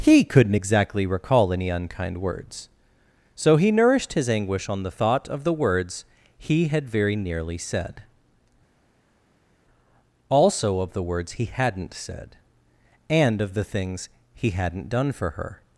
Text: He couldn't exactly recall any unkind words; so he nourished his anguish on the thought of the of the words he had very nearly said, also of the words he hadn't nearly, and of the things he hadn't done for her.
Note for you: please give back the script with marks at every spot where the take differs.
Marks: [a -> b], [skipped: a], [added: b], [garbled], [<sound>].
He couldn't exactly recall any unkind words; so he nourished his anguish on the thought of the [skipped: of the] words he had very nearly said, also of the words he hadn't [nearly, -> said] and of the things he hadn't done for her.